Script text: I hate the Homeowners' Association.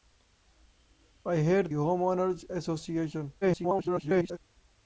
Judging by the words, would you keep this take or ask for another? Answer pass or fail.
fail